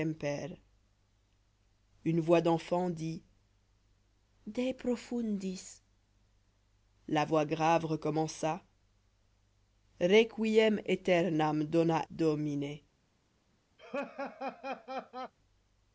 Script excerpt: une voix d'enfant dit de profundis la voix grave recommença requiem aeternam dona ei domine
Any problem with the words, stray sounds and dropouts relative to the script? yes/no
yes